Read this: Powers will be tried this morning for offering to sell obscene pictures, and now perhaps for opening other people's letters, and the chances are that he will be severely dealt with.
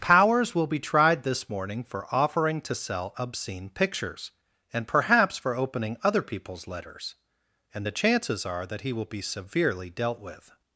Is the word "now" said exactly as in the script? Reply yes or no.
no